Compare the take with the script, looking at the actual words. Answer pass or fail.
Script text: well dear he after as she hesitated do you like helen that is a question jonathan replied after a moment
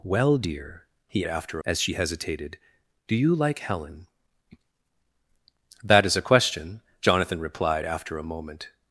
pass